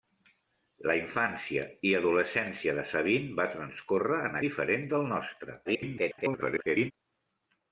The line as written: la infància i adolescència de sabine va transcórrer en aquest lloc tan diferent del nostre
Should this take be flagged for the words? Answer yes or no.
yes